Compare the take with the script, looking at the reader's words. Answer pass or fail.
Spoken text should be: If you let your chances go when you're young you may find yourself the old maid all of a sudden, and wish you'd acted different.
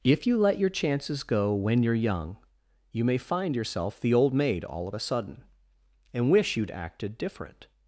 pass